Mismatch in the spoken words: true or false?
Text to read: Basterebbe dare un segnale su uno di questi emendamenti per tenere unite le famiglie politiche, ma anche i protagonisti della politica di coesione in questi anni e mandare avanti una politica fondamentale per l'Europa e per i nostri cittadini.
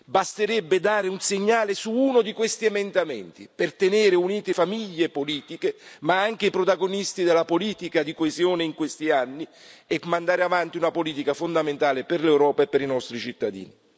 true